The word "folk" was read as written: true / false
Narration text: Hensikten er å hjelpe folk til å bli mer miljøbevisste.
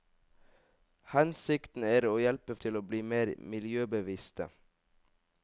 false